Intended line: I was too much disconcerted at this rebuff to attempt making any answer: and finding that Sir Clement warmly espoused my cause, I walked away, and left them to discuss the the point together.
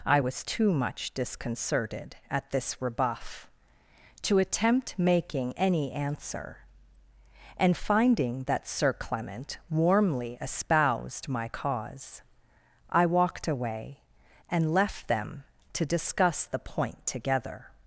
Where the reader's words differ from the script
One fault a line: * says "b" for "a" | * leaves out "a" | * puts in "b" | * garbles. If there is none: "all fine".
* leaves out "the"